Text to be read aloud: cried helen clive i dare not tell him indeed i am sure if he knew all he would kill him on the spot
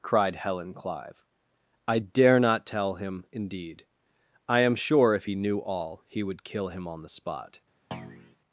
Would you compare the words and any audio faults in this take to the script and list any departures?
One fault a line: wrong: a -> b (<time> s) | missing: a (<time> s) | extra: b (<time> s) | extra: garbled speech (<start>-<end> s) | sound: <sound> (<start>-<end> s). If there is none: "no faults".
sound: thud (7.9-8.4 s)